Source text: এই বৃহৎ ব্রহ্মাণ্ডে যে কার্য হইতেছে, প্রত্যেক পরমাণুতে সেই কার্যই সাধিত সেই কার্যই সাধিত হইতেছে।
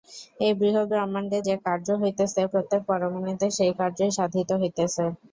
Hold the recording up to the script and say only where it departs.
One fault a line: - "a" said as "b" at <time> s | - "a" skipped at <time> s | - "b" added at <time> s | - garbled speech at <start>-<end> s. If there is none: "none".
- "সেই কার্যই সাধিত" skipped at 4.5 s